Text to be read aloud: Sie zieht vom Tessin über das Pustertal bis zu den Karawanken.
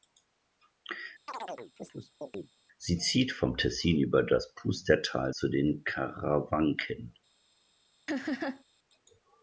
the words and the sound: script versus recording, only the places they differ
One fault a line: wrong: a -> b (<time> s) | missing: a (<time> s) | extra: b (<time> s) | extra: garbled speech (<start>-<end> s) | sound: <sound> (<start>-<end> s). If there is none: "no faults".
sound: chirp (1.3-2.5 s)
missing: bis (5.3 s)
sound: laugh (8.1-8.6 s)